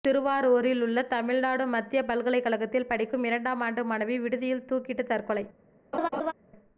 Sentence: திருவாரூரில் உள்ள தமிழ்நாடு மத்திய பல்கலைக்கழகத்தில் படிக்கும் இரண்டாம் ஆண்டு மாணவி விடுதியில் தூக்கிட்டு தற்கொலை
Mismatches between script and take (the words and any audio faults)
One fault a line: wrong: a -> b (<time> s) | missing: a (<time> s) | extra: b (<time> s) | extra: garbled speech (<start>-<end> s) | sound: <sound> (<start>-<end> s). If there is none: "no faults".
sound: laugh (5.9-6.3 s)